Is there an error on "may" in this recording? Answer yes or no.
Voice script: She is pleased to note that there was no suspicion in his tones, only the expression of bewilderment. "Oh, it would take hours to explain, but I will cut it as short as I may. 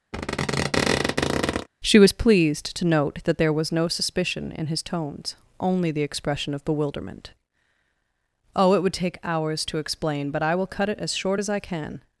yes